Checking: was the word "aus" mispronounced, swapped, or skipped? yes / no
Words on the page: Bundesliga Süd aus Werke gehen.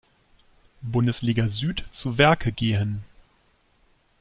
yes